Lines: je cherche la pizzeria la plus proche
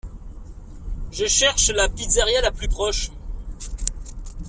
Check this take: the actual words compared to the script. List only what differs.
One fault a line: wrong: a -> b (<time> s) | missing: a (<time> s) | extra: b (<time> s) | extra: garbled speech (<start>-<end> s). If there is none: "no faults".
no faults